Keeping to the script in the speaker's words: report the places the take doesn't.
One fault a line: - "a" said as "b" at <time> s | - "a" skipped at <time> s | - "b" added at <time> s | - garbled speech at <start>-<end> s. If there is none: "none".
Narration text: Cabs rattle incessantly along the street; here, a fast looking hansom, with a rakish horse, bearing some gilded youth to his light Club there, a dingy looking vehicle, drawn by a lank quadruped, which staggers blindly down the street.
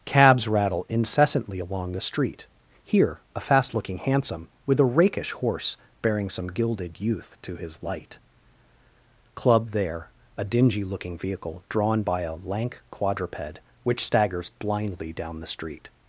none